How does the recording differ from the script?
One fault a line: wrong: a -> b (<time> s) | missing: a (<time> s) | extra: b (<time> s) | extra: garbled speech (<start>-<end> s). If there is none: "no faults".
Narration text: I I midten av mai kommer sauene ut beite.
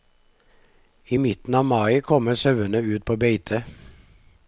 missing: I (1.2 s)
extra: på (3.0 s)